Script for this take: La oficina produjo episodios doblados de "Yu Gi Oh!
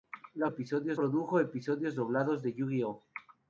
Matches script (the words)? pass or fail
fail